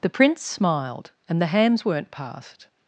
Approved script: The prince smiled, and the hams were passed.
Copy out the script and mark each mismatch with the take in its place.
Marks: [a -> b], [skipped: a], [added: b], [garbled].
The prince smiled, and the hams [were -> weren't] passed.